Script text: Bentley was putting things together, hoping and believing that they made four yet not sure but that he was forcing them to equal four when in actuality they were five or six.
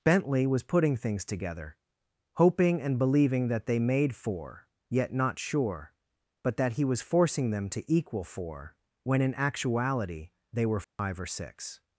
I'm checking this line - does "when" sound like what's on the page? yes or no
yes